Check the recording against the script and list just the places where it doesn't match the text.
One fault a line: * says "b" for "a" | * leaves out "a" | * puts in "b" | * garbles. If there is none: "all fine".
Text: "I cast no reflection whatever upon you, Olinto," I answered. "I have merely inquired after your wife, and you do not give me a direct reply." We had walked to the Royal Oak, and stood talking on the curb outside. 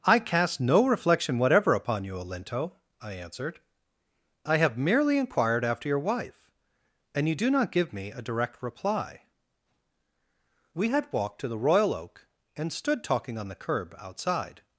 all fine